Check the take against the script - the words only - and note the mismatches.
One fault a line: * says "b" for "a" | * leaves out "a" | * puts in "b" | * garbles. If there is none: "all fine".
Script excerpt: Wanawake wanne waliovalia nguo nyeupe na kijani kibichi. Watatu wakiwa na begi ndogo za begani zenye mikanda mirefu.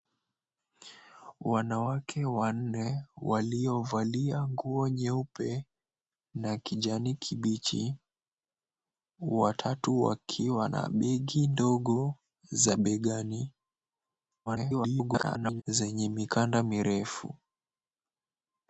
* garbles